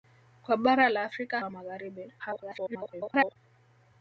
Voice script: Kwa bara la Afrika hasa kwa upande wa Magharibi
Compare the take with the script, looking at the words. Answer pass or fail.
fail